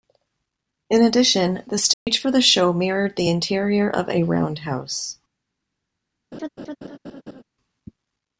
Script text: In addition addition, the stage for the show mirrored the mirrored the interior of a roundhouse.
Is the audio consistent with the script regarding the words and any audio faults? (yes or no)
no